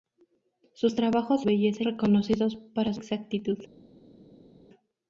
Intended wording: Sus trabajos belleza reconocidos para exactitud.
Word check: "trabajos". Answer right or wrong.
right